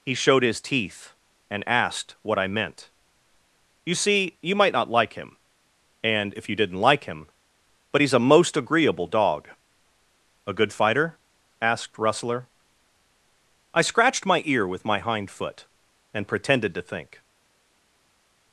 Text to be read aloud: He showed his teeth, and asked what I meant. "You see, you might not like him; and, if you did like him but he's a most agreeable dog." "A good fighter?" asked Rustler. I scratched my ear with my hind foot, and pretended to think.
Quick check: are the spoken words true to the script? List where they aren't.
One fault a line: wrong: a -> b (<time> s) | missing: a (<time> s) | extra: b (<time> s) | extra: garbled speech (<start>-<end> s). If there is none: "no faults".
wrong: did -> didn't (6.5 s)